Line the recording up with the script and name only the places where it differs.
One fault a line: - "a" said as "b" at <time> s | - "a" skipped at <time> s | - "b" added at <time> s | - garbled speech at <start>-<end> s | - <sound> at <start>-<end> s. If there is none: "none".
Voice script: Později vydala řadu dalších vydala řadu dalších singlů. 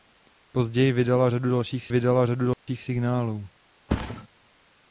- dropout at 2.5-2.7 s
- thud at 3.9-4.3 s